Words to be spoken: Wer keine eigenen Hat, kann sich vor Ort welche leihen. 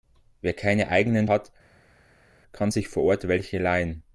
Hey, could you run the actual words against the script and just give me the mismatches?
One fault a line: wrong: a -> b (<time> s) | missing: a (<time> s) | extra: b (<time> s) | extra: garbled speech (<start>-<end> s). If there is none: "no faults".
no faults